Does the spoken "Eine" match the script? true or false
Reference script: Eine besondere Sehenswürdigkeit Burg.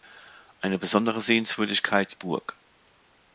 true